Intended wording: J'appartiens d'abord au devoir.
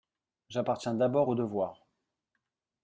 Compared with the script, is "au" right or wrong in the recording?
right